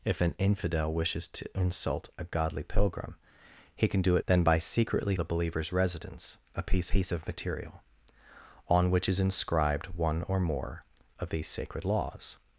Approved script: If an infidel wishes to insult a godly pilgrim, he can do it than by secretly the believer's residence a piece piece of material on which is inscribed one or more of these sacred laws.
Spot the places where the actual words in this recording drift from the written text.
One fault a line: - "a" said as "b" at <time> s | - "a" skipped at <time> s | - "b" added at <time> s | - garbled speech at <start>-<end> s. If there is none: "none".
none